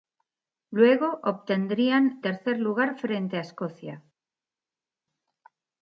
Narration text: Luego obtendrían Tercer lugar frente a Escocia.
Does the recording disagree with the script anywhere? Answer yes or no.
no